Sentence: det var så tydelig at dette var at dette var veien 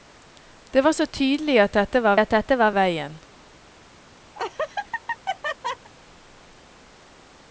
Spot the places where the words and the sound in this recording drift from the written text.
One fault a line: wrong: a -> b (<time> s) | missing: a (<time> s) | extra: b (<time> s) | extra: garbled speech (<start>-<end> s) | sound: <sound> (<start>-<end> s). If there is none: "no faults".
sound: laugh (4.4-5.9 s)